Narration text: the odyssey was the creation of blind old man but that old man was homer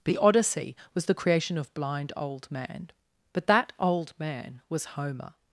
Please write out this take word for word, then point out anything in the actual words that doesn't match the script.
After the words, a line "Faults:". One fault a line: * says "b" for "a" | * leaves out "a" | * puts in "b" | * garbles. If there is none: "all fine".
the odyssey was the creation of blind old man but that old man was homer
Faults:
all fine